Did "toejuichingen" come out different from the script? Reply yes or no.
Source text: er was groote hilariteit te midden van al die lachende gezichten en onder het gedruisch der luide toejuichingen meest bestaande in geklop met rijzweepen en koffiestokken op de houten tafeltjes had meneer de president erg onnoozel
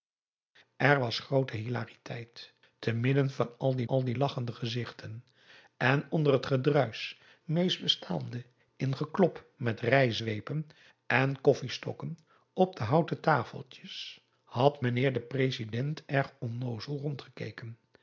yes